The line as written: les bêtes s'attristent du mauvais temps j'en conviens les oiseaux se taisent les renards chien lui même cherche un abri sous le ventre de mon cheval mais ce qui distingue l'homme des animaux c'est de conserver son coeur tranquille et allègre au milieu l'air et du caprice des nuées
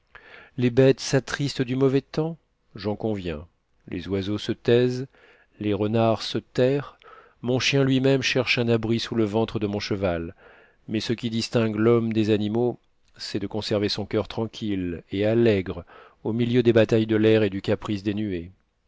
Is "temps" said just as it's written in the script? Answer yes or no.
yes